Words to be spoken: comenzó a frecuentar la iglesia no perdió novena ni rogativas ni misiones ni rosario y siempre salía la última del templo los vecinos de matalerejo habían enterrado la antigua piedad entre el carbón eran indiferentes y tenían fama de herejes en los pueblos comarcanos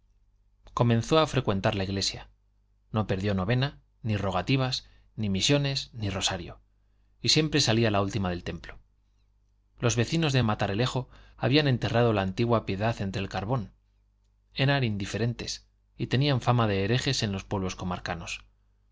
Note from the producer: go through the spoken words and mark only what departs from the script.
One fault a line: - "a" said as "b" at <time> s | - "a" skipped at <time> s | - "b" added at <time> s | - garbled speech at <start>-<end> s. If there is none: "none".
none